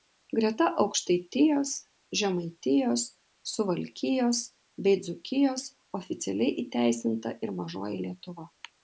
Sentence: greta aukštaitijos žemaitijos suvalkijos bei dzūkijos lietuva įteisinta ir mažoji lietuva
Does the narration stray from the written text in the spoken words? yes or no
yes